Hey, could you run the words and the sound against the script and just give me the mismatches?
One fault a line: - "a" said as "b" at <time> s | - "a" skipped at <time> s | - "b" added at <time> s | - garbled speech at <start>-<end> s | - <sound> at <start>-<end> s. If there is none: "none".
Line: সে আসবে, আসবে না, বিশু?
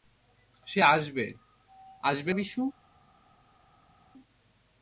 - "না" skipped at 2.3 s